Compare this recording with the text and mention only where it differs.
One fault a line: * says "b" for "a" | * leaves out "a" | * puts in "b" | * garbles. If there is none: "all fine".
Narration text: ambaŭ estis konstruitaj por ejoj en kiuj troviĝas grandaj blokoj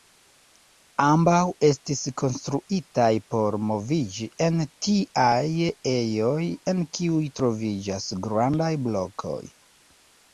* puts in "moviĝi en tiaj"